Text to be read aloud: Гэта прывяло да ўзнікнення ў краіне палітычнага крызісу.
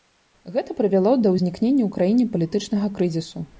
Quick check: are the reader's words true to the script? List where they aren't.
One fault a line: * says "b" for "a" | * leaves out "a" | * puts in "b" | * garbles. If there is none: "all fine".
all fine